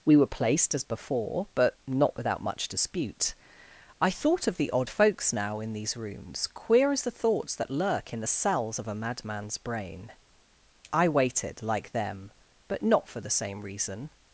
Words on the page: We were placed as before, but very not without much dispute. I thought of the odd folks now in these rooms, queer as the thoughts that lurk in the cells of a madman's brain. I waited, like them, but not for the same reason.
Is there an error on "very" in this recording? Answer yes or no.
yes